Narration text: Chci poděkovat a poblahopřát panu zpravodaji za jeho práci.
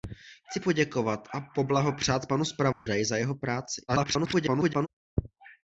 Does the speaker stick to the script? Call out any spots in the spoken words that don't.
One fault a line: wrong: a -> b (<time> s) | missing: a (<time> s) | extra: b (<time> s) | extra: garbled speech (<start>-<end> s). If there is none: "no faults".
extra: garbled speech (3.9-4.9 s)